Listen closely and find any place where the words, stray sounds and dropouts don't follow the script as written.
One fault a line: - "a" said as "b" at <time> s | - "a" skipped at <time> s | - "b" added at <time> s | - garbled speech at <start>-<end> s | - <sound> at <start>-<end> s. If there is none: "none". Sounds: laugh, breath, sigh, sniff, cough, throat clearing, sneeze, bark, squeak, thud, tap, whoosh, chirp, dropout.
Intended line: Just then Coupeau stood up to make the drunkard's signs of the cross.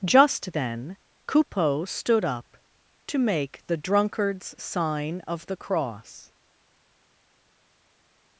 - "signs" said as "sign" at 4.6 s